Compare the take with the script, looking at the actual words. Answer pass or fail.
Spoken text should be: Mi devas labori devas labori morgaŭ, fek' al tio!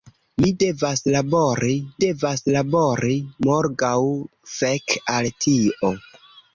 pass